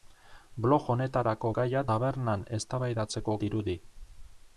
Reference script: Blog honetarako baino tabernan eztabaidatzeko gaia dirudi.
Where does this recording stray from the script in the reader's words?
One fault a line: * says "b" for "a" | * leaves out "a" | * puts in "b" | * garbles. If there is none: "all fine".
* says "gaia" for "baino"
* leaves out "gaia"